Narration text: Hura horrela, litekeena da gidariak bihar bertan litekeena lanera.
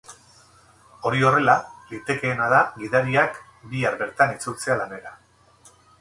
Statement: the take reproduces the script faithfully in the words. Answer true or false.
false